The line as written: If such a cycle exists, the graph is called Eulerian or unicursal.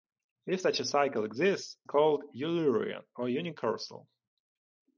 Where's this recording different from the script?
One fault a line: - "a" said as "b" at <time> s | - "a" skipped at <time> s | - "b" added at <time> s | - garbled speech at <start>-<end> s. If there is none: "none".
- "the graph is" skipped at 1.8 s